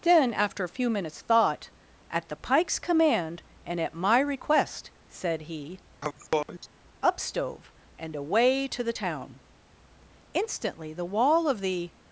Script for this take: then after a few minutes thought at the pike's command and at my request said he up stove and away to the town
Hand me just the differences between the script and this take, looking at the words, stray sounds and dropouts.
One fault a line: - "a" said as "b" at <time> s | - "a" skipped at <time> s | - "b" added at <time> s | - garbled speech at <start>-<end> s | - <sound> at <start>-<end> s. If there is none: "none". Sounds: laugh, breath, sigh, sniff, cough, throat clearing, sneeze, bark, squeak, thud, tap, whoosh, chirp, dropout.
- sneeze at 6.0-6.7 s
- "instantly the wall of the" added at 10.3 s